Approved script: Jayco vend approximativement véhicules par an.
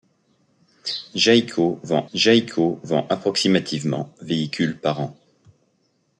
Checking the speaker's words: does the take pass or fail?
fail